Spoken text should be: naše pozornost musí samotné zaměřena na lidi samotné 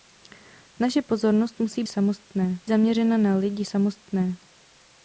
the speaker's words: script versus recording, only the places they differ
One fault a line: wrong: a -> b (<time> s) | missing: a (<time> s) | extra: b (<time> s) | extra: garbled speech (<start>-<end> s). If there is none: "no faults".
no faults